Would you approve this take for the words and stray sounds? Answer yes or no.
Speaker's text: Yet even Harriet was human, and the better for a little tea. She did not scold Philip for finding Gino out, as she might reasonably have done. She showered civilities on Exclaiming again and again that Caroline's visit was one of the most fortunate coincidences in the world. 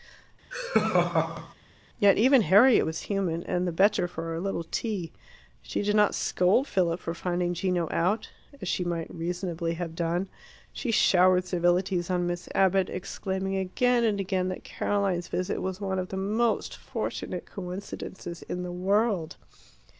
no